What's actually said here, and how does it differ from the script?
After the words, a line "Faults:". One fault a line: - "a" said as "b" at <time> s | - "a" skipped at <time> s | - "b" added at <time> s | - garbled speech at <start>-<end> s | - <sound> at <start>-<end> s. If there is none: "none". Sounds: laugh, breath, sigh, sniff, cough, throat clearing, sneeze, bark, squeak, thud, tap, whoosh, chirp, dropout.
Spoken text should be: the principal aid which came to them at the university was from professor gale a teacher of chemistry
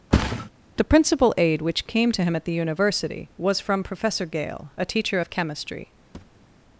the principal aid which came to him at the university was from professor gale a teacher of chemistry
Faults:
- thud at 0.1-0.5 s
- "them" said as "him" at 2.2 s
- thud at 6.1-6.5 s